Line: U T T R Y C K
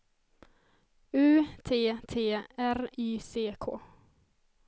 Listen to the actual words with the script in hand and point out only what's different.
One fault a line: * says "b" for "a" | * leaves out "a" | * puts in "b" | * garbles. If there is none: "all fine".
all fine